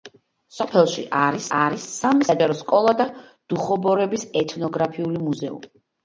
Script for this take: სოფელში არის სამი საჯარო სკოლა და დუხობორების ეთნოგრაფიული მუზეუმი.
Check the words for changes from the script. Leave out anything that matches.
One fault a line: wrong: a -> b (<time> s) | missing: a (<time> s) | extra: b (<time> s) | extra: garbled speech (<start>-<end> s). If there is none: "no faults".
extra: არის (1.6 s)